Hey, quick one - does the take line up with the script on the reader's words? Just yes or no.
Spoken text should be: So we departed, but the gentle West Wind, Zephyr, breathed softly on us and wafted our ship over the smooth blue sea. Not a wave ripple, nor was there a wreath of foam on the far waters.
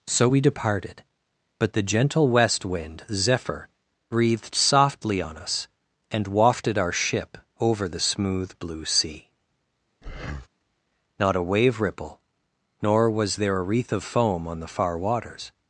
yes